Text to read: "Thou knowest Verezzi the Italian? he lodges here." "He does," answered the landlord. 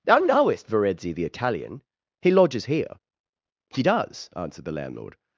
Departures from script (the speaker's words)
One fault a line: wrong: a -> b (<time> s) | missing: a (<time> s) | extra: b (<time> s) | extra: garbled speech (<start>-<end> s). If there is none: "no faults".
no faults